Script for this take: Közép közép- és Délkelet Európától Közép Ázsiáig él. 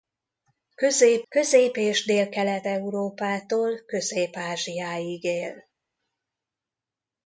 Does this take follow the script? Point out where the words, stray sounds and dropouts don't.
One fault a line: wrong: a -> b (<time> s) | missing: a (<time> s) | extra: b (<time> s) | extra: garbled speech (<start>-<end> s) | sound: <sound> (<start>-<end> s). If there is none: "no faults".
no faults